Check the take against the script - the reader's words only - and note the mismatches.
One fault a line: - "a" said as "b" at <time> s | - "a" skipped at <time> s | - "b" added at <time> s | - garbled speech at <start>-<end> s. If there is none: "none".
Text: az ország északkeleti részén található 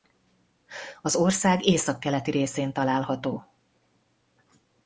none